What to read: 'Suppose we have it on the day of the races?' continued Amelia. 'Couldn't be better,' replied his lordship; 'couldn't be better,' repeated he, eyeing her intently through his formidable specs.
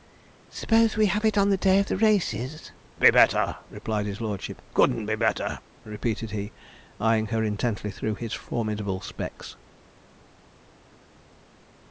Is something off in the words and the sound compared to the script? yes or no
yes